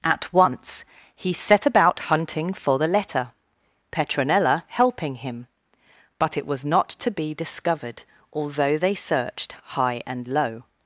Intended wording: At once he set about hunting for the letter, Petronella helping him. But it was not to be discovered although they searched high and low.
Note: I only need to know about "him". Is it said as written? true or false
true